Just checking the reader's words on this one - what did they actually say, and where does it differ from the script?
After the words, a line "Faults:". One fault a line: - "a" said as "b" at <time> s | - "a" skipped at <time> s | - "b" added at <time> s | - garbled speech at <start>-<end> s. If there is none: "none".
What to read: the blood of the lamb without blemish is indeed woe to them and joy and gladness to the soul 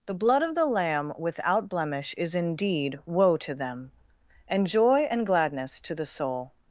the blood of the lamb without blemish is indeed woe to them and joy and gladness to the soul
Faults:
none